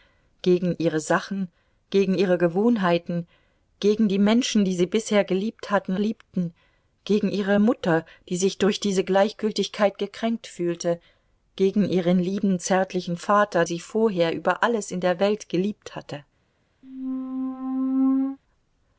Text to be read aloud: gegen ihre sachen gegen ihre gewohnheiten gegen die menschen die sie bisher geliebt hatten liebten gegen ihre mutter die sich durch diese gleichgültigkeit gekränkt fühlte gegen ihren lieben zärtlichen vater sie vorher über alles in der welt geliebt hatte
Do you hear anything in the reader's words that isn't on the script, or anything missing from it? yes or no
no